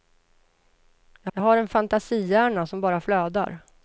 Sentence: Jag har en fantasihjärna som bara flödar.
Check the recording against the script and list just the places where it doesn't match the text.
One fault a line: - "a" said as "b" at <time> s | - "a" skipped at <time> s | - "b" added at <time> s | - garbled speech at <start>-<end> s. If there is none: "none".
- "jag" added at 1.3 s